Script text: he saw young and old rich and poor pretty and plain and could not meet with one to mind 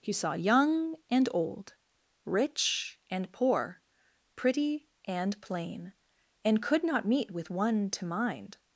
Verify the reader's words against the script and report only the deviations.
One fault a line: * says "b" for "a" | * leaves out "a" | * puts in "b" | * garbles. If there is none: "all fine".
all fine